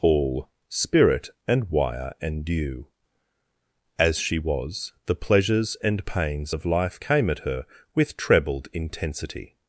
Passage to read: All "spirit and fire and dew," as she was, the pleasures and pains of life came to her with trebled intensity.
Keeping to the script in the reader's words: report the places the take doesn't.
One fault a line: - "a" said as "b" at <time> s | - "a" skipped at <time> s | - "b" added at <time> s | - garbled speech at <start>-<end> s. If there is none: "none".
- "fire" said as "wire" at 1.7 s
- "to" said as "at" at 7.3 s